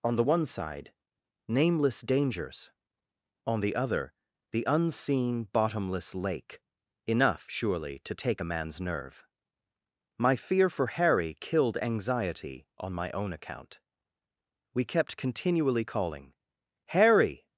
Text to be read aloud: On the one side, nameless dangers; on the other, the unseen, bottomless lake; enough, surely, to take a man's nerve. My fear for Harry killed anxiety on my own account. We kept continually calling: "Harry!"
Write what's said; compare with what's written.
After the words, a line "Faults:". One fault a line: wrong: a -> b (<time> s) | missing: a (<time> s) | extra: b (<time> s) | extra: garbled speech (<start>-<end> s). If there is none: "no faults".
On the one side, nameless dangers; on the other, the unseen, bottomless lake; enough, surely, to take a man's nerve. My fear for Harry killed anxiety on my own account. We kept continually calling: "Harry!"
Faults:
no faults